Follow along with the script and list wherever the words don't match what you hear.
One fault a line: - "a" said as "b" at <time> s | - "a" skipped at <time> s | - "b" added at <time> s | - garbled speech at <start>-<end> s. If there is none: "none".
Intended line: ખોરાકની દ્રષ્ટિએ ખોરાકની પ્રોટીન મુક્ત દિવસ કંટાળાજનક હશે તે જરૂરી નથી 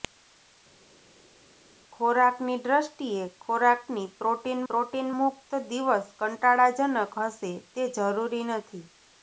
- "પ્રોટીન" added at 4.7 s